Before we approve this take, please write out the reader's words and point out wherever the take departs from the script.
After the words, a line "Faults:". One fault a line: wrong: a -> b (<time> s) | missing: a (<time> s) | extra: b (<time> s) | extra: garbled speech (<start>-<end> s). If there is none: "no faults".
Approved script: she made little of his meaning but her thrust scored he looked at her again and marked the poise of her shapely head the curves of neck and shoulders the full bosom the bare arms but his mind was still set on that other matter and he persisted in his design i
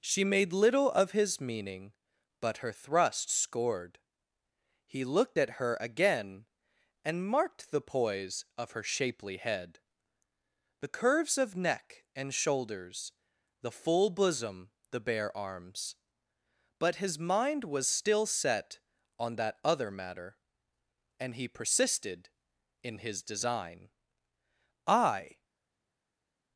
she made little of his meaning but her thrust scored he looked at her again and marked the poise of her shapely head the curves of neck and shoulders the full bosom the bare arms but his mind was still set on that other matter and he persisted in his design i
Faults:
no faults